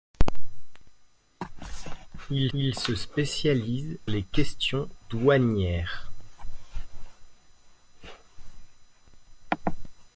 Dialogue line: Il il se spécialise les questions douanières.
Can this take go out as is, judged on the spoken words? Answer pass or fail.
pass